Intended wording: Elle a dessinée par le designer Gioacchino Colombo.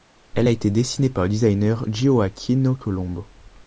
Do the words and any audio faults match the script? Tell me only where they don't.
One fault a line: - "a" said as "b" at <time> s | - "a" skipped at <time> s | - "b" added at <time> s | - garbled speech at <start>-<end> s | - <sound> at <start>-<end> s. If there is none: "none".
- "été" added at 0.5 s